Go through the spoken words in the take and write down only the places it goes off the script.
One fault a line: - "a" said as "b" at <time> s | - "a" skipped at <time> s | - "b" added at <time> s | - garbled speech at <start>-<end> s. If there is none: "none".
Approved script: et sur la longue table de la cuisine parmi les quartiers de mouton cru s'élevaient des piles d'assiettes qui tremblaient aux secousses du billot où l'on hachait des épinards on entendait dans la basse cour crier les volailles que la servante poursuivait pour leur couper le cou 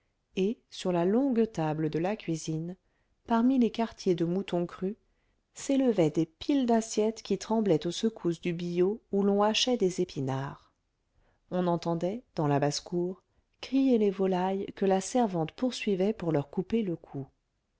none